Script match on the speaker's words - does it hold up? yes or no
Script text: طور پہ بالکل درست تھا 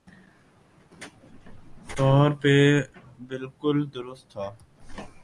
yes